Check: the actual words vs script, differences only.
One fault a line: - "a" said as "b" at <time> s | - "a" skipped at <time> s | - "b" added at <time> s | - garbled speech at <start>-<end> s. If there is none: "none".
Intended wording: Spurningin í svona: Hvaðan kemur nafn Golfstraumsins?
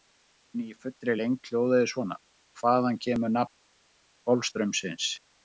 - "fullri lengd hljóðaði" added at 0.8 s